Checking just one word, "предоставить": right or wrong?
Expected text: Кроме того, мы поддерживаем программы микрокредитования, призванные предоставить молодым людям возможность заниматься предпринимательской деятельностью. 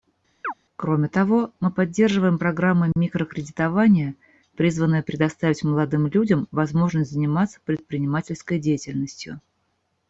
right